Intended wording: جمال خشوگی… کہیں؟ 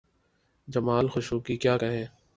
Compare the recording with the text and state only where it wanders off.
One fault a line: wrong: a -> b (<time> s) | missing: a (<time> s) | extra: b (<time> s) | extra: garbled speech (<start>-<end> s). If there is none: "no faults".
extra: کیا (1.5 s)